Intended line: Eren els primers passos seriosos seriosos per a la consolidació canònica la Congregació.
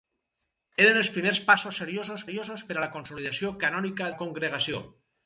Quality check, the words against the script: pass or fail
pass